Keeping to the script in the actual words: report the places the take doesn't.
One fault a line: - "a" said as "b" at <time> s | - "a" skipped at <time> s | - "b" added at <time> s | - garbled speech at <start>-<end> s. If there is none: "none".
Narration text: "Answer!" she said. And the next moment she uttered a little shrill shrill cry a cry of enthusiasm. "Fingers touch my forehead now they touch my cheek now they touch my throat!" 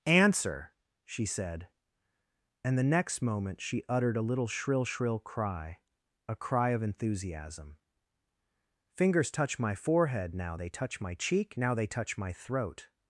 none